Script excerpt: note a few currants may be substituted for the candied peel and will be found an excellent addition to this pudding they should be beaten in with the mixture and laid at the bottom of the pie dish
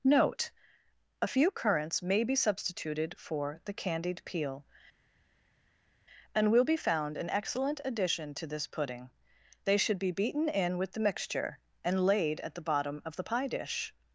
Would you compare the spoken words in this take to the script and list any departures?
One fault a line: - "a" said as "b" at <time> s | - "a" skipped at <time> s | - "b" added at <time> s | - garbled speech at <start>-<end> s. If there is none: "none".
none